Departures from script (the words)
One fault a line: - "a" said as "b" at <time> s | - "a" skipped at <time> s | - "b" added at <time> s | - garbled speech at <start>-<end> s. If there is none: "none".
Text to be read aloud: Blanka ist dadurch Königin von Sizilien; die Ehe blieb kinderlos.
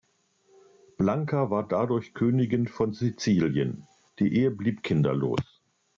- "ist" said as "war" at 1.5 s